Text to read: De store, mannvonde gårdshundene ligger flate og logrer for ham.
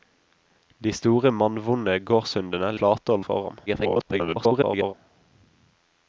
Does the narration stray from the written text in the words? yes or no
yes